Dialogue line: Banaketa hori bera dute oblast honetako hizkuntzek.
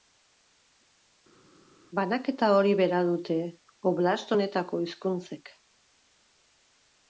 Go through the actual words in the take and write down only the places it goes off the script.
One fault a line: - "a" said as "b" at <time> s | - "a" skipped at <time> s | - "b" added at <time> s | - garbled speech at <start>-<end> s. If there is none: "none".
none